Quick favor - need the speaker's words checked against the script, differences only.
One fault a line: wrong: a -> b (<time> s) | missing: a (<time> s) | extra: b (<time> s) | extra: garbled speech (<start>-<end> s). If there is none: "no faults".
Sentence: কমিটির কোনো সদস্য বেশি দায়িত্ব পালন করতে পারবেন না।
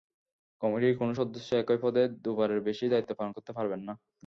extra: একই পদে দুবারের (1.6 s)